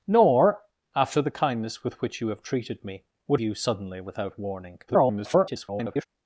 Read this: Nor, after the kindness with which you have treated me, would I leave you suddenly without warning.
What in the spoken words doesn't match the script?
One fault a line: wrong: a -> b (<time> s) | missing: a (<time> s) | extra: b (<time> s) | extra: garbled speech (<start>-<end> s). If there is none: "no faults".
missing: I leave (3.4 s)
extra: garbled speech (4.9-6.1 s)